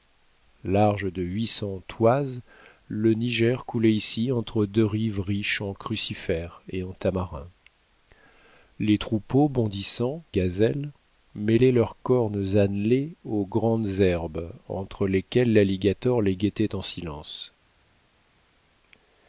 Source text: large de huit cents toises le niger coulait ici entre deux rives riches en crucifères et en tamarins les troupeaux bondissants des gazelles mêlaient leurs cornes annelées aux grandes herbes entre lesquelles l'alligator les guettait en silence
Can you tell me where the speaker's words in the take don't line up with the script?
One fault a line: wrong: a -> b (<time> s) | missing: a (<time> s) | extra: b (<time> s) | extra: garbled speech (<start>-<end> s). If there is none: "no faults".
missing: des (10.2 s)